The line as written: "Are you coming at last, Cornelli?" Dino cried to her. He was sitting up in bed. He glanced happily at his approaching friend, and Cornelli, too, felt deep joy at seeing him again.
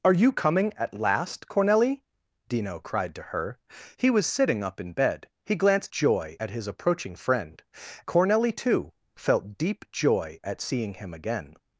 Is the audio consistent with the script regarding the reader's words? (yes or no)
no